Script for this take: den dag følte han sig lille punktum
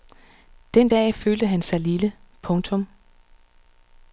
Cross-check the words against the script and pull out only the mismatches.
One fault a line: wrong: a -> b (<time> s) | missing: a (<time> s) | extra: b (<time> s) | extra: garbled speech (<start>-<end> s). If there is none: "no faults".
no faults